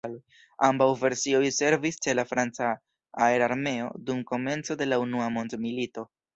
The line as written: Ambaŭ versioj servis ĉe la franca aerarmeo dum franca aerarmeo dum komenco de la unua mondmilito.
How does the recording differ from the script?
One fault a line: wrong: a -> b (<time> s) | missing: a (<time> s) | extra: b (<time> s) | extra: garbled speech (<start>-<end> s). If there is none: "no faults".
missing: franca aerarmeo dum (4.2 s)